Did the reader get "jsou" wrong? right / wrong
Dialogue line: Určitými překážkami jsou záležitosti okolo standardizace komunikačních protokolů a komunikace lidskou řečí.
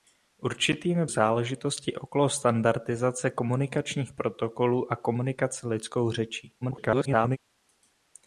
wrong